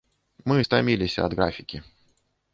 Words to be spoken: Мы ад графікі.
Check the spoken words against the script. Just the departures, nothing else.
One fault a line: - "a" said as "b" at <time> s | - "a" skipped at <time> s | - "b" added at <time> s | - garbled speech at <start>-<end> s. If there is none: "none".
- "стаміліся" added at 0.6 s